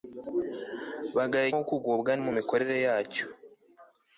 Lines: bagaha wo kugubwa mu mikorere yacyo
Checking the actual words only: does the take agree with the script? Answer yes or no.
yes